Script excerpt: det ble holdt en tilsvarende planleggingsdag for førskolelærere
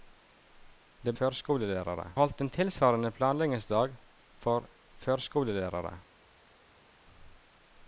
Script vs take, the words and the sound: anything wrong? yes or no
yes